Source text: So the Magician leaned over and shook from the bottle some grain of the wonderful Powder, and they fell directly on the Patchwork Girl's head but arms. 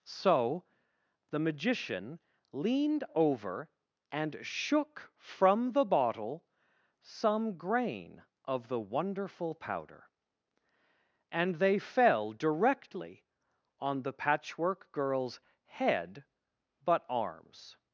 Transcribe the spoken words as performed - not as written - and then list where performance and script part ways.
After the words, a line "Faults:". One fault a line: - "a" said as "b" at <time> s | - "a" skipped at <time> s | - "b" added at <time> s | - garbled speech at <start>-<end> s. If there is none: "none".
So the Magician leaned over and shook from the bottle some grain of the wonderful Powder, and they fell directly on the Patchwork Girl's head but arms.
Faults:
none